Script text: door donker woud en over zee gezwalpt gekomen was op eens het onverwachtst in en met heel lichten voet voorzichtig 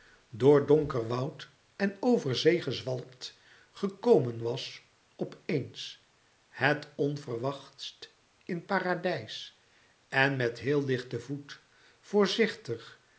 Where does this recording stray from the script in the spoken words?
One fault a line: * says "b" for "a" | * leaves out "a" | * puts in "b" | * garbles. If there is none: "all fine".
* puts in "paradijs"